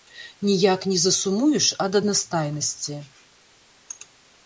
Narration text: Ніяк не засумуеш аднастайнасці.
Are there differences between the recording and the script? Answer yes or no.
yes